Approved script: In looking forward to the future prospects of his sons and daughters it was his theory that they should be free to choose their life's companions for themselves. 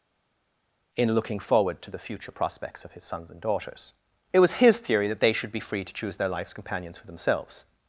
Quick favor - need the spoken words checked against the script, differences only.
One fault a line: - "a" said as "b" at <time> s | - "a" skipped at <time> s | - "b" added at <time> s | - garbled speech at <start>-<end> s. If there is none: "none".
none